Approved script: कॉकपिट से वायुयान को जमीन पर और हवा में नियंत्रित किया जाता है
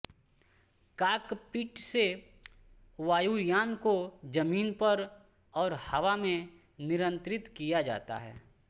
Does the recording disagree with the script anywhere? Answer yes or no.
no